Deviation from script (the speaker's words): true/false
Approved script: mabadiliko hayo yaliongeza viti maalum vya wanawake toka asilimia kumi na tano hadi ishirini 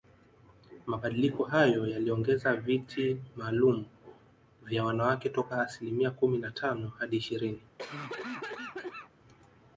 false